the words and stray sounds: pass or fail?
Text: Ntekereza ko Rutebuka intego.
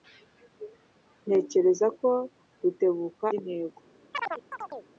fail